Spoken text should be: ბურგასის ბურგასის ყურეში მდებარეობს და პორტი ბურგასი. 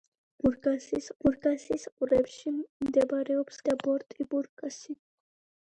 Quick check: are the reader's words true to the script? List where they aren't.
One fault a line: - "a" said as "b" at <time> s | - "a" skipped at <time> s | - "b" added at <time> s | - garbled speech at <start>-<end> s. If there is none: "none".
none